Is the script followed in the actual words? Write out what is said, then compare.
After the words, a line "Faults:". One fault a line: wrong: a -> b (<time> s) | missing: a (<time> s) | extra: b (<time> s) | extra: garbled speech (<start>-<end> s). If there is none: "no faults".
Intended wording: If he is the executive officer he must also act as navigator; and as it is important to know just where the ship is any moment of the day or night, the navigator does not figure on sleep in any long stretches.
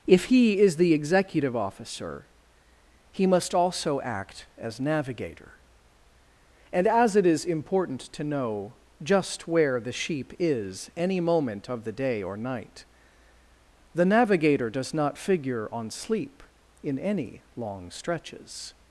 If he is the executive officer he must also act as navigator; and as it is important to know just where the sheep is any moment of the day or night, the navigator does not figure on sleep in any long stretches.
Faults:
wrong: ship -> sheep (9.9 s)